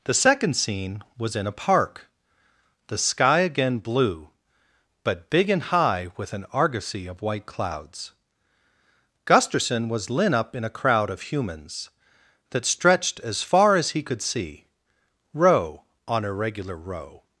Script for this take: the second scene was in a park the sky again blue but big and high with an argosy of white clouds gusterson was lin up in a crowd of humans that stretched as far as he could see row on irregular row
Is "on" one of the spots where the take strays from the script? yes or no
no